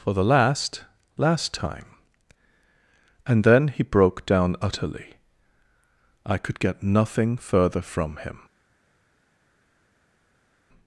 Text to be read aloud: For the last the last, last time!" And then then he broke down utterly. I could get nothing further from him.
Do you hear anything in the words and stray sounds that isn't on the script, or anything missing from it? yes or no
yes